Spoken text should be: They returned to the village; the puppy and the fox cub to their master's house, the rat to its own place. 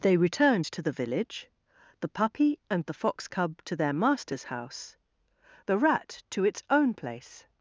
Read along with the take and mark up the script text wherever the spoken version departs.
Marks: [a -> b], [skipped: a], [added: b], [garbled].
They returned to the village; the puppy and the fox cub to their master's house, the rat to its own place.